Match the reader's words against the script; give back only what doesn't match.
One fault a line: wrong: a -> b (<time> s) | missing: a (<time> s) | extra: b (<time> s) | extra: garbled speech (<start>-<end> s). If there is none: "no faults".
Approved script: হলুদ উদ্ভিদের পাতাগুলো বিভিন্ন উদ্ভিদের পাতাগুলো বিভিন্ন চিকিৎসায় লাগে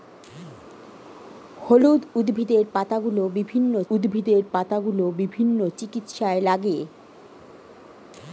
no faults